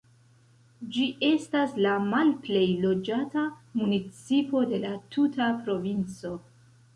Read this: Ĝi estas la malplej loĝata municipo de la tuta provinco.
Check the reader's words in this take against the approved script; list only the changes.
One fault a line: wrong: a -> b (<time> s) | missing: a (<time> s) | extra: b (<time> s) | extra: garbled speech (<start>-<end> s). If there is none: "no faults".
no faults